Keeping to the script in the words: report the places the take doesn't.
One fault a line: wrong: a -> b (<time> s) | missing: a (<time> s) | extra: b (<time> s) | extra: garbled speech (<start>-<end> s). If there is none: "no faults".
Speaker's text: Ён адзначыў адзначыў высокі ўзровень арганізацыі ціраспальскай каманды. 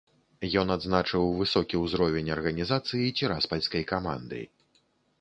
missing: адзначыў (1.3 s)